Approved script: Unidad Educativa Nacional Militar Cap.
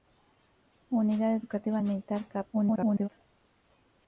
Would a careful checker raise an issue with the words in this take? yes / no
yes